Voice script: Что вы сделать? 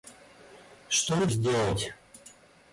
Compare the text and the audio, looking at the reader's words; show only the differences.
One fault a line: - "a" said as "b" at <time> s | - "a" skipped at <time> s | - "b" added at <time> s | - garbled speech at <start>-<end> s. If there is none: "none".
none